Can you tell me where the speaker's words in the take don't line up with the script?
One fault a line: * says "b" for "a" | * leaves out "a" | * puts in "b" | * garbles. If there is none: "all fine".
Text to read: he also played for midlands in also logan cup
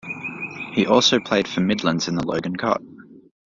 * says "the" for "also"